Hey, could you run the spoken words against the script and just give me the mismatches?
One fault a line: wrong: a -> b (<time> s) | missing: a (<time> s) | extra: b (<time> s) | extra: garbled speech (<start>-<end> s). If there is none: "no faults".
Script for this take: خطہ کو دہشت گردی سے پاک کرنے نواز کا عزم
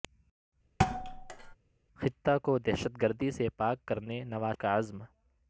no faults